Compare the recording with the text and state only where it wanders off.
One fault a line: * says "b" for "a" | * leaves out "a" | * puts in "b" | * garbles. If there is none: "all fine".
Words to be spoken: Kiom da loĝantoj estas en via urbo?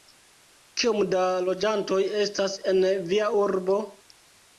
all fine